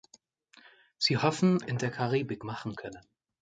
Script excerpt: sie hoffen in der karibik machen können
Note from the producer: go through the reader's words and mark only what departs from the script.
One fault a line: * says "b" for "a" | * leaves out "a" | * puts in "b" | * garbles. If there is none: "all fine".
all fine